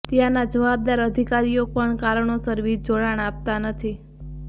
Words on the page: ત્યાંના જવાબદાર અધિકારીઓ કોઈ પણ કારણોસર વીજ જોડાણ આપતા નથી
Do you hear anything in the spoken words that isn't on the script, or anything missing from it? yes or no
yes